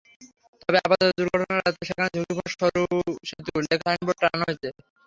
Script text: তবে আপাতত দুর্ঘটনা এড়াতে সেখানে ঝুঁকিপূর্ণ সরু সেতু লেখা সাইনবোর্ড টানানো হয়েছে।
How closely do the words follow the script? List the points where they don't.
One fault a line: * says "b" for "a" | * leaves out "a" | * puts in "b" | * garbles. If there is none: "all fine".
all fine